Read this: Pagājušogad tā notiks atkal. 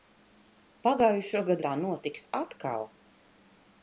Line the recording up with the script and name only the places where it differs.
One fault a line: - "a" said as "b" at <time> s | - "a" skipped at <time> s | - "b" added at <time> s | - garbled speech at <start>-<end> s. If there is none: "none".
none